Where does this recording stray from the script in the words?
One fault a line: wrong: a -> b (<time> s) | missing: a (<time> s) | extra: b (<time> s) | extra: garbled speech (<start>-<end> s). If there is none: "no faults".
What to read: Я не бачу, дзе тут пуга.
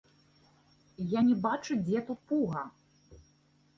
no faults